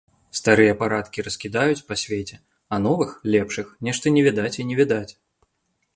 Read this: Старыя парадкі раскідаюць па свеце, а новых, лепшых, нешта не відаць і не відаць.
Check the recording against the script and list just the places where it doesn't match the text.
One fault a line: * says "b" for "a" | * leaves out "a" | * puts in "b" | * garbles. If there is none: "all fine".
all fine